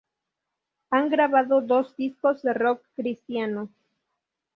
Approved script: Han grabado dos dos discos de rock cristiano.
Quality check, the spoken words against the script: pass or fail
fail